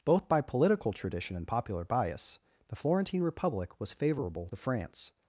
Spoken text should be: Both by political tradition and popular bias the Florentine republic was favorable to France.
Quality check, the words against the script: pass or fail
fail